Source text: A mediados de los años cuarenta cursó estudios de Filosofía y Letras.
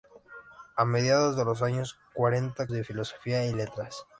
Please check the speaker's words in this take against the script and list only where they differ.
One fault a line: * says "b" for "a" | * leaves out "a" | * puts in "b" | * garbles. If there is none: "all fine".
* leaves out "cursó estudios"